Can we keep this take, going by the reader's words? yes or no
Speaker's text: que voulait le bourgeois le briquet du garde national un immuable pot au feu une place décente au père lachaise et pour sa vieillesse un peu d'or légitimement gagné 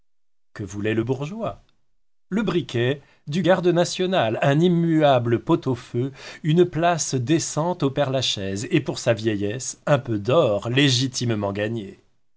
yes